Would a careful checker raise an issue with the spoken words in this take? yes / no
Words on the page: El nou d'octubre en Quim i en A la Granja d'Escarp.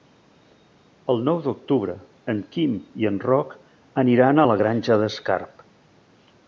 yes